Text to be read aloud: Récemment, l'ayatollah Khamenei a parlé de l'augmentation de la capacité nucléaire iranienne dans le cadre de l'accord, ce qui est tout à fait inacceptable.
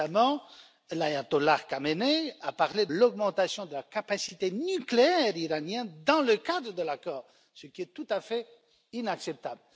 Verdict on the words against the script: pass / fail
fail